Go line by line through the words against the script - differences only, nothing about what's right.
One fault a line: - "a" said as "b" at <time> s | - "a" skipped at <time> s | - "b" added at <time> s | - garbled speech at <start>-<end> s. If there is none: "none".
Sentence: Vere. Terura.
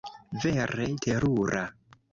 none